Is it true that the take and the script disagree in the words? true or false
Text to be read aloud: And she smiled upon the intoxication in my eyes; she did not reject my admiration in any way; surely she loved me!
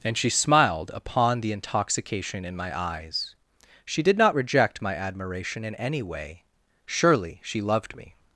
false